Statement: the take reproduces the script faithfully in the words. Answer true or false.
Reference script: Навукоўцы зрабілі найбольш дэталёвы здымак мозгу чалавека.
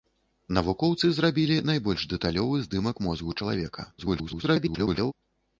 false